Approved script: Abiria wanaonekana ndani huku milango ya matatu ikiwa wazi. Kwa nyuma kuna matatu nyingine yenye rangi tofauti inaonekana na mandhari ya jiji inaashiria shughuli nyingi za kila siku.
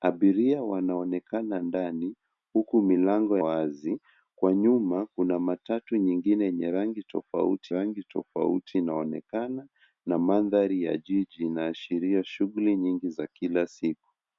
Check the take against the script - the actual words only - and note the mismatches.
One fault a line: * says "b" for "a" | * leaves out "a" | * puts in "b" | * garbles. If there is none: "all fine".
* leaves out "ya matatu ikiwa"
* puts in "rangi tofauti"